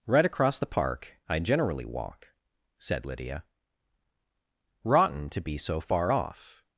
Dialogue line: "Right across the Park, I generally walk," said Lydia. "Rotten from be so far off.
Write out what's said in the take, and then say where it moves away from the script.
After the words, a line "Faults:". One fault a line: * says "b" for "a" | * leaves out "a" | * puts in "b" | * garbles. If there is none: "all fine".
"Right across the Park, I generally walk," said Lydia. "Rotten to be so far off.
Faults:
* says "to" for "from"